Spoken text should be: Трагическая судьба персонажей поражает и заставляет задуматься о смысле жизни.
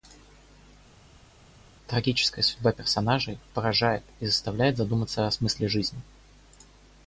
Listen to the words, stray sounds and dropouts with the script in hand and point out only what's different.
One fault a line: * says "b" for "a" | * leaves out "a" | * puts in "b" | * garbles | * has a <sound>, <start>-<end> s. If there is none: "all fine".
all fine